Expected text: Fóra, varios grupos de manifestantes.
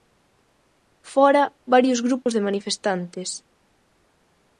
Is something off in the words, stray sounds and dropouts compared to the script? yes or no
yes